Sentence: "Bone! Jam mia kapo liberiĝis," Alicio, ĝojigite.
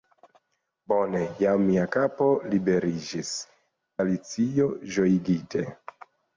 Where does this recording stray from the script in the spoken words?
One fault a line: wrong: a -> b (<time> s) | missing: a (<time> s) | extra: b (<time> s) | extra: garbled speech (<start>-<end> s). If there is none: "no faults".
no faults